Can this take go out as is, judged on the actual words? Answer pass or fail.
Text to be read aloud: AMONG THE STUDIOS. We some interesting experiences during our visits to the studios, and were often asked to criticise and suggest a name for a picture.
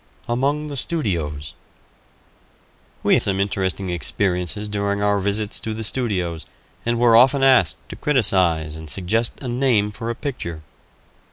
pass